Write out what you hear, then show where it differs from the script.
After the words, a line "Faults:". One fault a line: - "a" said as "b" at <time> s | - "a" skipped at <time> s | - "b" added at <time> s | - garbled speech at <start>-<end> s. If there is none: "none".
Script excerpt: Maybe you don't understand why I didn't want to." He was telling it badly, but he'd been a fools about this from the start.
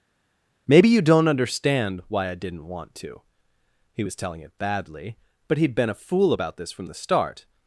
Maybe you don't understand why I didn't want to." He was telling it badly, but he'd been a fool about this from the start.
Faults:
- "fools" said as "fool" at 5.9 s